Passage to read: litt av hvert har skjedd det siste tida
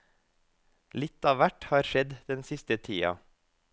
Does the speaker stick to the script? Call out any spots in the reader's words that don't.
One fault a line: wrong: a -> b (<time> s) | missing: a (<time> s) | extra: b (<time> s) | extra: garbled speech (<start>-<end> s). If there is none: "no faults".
wrong: det -> den (2.3 s)